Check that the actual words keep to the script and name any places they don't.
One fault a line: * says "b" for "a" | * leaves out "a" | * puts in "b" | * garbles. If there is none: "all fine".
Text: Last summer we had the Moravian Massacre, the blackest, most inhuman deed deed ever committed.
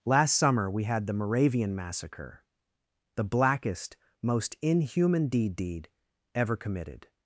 all fine